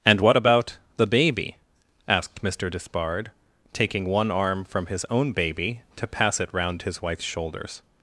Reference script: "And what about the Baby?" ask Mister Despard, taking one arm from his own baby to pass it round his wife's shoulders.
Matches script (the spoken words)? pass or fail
fail